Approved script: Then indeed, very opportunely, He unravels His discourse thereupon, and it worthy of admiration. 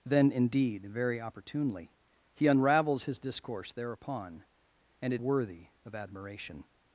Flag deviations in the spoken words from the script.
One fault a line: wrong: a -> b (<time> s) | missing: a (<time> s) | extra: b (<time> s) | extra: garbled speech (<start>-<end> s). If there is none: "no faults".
no faults